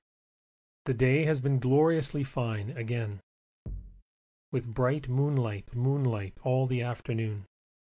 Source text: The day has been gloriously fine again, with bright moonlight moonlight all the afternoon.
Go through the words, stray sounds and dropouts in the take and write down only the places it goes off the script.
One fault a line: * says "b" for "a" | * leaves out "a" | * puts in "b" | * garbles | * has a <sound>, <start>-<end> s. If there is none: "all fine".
* has a thud, 3.7-4.0 s